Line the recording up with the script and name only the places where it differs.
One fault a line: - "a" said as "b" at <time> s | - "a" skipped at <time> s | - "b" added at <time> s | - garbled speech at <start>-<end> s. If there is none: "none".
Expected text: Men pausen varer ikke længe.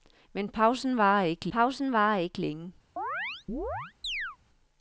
- "pausen varer ikke" added at 1.5 s